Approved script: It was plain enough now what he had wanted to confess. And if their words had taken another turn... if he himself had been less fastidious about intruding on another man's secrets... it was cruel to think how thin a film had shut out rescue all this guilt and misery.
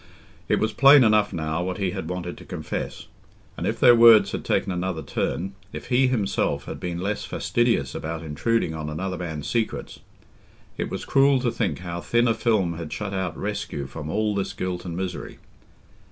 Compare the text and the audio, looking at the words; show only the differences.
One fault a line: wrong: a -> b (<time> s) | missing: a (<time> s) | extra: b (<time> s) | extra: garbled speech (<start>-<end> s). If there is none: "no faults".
extra: from (13.9 s)